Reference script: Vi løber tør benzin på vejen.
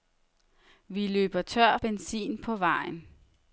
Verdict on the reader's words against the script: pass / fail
pass